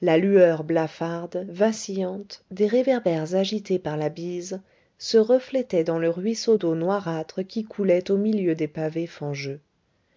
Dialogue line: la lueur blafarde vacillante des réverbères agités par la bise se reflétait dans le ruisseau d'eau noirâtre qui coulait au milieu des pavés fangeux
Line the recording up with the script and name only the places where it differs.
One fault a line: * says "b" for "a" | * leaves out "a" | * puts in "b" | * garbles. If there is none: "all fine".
all fine